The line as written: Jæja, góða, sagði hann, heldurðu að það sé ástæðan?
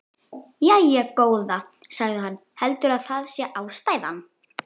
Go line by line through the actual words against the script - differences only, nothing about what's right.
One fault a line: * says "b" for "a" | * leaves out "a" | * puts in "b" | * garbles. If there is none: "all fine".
all fine